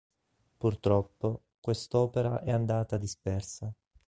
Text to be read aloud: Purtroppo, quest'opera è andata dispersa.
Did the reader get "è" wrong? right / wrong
right